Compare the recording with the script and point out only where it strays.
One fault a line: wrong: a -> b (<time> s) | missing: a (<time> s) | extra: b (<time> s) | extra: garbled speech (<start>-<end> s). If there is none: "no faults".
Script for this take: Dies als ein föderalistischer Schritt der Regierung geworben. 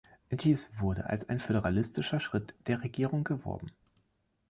extra: wurde (0.8 s)